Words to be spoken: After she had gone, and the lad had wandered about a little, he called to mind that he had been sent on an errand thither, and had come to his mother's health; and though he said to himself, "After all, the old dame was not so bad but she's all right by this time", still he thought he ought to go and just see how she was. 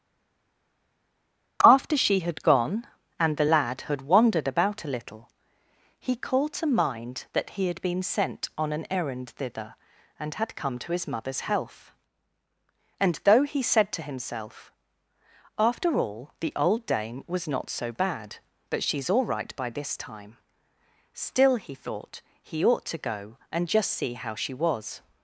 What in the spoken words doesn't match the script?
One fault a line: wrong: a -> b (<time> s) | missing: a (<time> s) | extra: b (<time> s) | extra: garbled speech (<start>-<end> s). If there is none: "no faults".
no faults